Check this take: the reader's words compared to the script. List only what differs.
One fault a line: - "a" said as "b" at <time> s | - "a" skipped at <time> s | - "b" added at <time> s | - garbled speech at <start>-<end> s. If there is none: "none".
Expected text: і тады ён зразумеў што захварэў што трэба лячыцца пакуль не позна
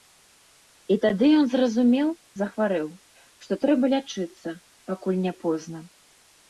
- "што" skipped at 2.1 s